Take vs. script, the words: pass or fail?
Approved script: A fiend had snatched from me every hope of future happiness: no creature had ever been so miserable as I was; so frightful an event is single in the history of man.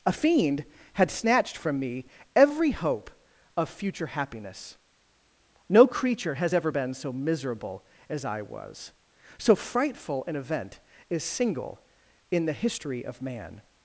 fail